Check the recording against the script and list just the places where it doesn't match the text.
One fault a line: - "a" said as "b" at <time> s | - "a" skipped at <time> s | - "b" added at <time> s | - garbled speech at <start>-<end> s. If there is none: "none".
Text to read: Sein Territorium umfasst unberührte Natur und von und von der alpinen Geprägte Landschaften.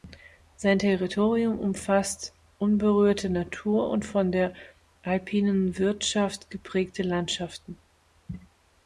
- "und von" skipped at 4.3 s
- "Wirtschaft" added at 5.8 s